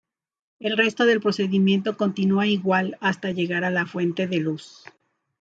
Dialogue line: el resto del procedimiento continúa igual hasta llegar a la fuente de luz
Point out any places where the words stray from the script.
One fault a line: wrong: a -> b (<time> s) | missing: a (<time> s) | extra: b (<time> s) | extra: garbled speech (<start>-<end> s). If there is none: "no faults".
no faults